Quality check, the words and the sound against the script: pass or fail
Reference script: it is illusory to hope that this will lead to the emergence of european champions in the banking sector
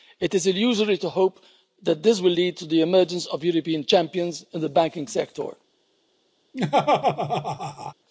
fail